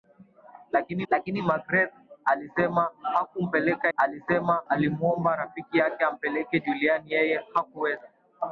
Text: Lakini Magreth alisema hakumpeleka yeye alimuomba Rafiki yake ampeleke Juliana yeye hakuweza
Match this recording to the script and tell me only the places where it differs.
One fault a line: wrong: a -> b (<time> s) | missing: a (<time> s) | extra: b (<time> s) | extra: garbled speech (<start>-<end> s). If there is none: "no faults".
extra: lakini (1.1 s)
wrong: yeye -> alisema (4.0 s)